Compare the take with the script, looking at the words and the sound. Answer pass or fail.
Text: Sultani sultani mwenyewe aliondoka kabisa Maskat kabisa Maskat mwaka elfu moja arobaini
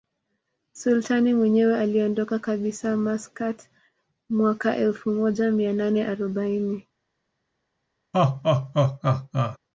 fail